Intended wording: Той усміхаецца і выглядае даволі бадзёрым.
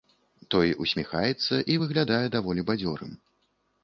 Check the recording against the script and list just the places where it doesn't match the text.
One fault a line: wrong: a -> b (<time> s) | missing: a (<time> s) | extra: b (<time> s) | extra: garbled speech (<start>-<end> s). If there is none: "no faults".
no faults